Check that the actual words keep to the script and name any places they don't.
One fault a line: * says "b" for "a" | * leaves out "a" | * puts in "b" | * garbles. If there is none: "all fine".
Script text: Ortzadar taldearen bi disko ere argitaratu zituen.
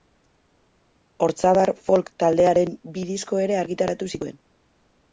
* puts in "folk"